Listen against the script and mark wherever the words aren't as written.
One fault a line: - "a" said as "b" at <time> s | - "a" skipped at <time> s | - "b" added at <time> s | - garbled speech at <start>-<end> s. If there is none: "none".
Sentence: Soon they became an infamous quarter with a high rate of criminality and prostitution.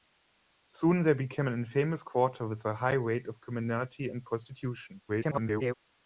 - garbled speech at 5.1-5.7 s